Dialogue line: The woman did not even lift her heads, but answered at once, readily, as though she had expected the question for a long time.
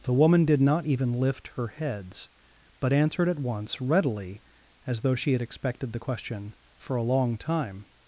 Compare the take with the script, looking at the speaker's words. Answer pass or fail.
pass